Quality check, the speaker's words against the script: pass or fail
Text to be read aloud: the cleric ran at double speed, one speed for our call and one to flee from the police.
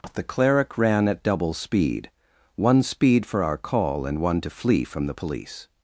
pass